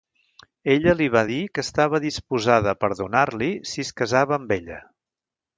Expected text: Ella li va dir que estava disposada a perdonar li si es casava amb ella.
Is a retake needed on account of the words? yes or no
no